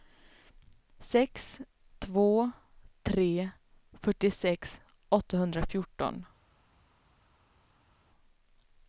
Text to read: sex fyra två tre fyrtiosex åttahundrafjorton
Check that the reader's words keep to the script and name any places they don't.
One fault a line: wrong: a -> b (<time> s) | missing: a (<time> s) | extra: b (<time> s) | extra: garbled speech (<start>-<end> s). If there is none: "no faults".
missing: fyra (1.6 s)